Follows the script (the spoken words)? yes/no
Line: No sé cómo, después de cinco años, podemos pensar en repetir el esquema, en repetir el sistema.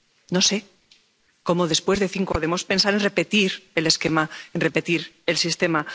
no